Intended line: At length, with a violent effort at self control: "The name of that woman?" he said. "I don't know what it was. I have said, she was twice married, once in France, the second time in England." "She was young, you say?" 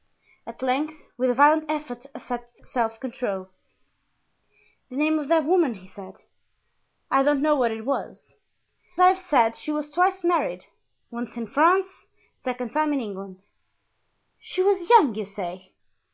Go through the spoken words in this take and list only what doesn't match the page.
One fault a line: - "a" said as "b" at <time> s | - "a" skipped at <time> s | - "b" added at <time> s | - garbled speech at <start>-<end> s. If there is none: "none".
none